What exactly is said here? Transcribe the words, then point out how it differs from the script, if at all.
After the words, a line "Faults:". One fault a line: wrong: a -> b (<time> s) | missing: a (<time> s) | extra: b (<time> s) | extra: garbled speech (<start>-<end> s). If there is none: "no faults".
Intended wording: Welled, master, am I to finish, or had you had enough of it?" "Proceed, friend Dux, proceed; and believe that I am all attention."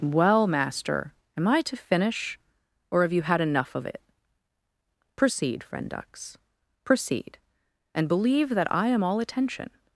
Well, master, am I to finish, or have you had enough of it?" "Proceed, friend Dux, proceed; and believe that I am all attention."
Faults:
wrong: Welled -> Well (0.0 s)
wrong: had -> have (3.0 s)